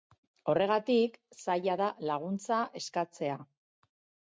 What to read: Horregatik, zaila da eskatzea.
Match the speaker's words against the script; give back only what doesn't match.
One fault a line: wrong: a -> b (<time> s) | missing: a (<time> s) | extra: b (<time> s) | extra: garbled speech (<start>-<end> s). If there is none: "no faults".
extra: laguntza (2.1 s)